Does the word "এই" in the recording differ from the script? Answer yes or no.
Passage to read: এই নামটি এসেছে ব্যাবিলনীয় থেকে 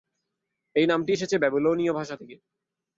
no